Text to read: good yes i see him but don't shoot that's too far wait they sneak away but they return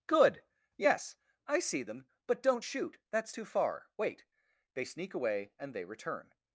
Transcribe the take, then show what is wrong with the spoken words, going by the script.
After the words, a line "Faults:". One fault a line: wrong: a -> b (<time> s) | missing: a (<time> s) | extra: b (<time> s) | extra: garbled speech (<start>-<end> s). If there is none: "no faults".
good yes i see them but don't shoot that's too far wait they sneak away and they return
Faults:
wrong: him -> them (1.8 s)
wrong: but -> and (5.6 s)